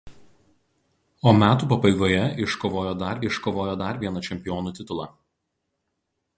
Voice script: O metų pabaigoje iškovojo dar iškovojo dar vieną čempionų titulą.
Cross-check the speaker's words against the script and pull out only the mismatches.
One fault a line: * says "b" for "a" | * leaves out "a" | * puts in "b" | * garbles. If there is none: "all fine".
all fine